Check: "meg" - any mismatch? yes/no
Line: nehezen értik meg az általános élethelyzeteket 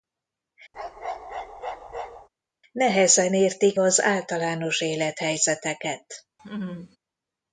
yes